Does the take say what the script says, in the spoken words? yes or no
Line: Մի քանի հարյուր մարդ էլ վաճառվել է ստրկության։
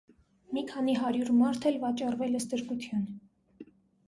yes